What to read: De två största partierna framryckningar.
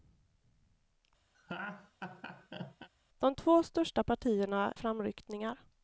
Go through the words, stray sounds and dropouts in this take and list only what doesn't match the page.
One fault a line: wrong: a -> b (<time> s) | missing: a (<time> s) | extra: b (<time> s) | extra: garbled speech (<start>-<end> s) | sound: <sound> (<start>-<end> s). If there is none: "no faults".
sound: laugh (1.3-2.9 s)